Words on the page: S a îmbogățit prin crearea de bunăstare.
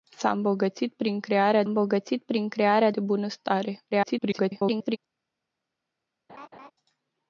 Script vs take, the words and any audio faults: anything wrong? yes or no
yes